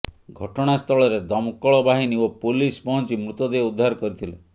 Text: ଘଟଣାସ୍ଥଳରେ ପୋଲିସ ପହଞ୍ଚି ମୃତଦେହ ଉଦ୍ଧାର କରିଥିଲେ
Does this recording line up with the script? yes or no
no